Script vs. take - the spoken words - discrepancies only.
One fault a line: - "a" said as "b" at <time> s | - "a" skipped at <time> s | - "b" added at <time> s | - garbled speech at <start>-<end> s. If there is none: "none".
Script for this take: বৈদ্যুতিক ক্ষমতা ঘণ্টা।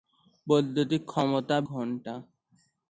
none